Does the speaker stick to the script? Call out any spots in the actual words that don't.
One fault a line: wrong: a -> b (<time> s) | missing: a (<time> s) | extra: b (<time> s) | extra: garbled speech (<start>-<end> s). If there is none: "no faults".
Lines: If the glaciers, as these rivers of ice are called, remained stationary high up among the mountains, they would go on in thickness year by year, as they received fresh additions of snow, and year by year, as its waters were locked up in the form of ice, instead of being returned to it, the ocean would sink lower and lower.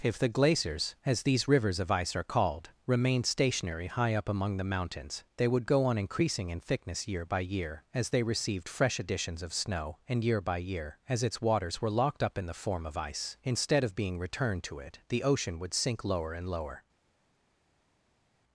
extra: increasing (6.0 s)